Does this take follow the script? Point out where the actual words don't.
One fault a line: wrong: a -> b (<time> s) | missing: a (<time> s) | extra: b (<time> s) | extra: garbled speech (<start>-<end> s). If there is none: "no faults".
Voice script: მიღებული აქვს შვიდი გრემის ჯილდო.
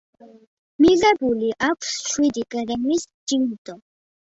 no faults